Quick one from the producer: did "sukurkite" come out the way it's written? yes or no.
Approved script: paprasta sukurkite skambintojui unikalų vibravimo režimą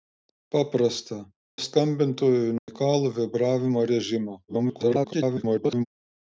no